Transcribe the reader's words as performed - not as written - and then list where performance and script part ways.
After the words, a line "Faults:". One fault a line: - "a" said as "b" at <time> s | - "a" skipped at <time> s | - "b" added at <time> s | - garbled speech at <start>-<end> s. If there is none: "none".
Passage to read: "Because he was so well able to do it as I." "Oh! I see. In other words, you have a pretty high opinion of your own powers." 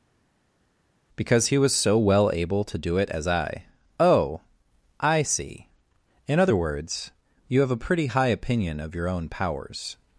"Because he was so well able to do it as I." "Oh! I see. In other words, you have a pretty high opinion of your own powers."
Faults:
none